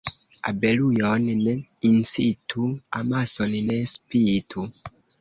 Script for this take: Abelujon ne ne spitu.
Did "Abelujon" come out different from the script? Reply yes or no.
no